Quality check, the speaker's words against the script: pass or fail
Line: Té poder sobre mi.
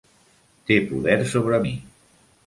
pass